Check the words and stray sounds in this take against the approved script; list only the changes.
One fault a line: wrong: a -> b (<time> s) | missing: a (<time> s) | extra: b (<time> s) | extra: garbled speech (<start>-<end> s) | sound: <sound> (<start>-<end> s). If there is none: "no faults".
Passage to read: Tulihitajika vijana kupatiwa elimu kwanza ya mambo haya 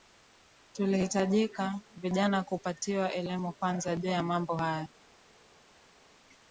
extra: juu (3.9 s)